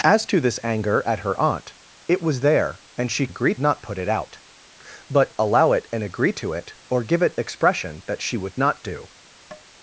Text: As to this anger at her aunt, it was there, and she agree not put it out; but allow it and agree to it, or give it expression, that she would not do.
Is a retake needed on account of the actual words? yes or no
no